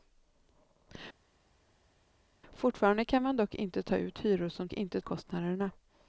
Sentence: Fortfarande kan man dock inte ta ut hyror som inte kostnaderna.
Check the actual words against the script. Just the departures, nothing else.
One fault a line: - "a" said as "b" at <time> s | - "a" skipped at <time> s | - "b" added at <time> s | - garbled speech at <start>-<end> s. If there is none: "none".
none